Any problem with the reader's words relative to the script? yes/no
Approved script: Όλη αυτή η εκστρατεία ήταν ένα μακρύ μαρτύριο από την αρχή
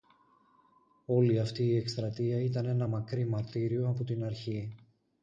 no